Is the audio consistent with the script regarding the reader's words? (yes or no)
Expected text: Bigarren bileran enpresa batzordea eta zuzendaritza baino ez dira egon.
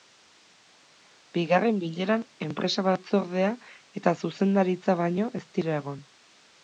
yes